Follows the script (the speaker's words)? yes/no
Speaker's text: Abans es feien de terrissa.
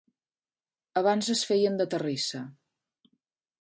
yes